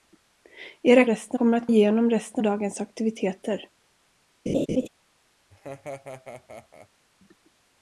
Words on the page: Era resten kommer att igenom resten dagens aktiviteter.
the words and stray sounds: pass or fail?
fail